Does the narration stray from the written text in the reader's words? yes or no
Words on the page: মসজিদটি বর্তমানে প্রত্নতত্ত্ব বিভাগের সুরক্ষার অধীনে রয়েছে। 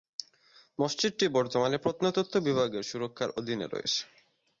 no